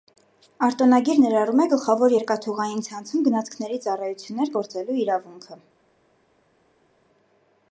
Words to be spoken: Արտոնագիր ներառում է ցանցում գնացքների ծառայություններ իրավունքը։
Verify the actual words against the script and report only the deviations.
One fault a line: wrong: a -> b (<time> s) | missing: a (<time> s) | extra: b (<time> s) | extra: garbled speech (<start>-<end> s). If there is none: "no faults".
extra: գլխավոր երկաթուղային (1.7 s)
extra: գործելու (4.6 s)